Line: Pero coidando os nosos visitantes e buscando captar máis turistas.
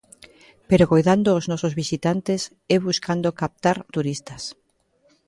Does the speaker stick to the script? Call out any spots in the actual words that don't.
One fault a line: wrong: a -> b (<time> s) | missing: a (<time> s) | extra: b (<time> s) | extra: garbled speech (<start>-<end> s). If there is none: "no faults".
missing: máis (3.8 s)